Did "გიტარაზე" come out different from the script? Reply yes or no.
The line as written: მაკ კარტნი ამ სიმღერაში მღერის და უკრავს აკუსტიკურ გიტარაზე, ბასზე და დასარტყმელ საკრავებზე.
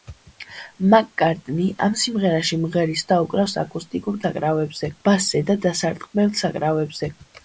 yes